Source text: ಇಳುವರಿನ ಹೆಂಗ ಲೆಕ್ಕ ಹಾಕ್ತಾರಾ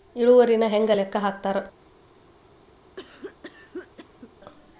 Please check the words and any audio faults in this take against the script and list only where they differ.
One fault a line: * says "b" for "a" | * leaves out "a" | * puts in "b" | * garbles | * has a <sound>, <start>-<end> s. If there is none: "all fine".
* has a cough, 3.0-4.3 s